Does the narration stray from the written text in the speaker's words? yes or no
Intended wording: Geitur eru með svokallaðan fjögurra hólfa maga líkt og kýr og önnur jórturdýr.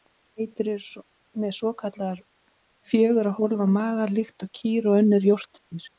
no